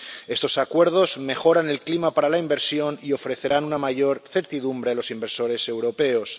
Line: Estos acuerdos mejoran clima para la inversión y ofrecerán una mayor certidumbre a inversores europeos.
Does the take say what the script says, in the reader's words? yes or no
no